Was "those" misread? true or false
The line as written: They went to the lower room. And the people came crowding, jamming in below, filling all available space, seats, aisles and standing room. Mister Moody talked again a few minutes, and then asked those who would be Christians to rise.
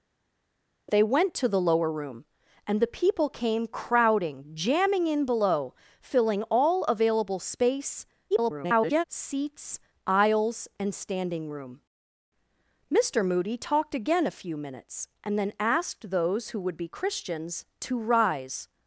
false